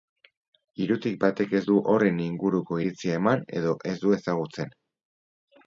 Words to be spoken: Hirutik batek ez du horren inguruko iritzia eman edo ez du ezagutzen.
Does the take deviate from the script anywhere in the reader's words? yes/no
no